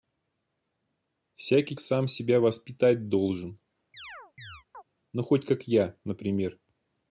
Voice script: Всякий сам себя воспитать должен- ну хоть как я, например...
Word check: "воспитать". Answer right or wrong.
right